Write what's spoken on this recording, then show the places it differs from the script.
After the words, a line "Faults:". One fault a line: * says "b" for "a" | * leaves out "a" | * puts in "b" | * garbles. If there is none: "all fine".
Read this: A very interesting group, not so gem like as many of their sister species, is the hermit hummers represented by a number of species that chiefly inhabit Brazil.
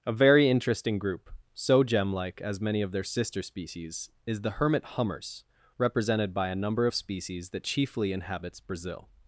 A very interesting group, so gem like as many of their sister species, is the hermit hummers represented by a number of species that chiefly inhabits Brazil.
Faults:
* leaves out "not"
* says "inhabits" for "inhabit"